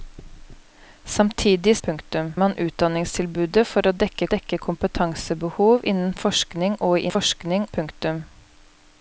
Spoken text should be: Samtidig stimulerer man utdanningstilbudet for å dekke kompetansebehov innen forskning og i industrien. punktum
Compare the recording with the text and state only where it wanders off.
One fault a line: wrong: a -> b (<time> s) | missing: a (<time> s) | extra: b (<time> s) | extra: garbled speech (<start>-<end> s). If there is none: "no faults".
wrong: stimulerer -> punktum (1.9 s)
extra: dekke (4.3 s)
wrong: industrien -> forskning (7.1 s)